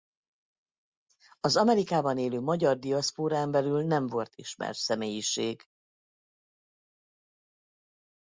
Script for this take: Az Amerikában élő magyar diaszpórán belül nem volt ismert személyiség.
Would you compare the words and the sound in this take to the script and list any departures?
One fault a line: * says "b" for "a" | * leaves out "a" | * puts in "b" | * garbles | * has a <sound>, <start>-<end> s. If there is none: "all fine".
all fine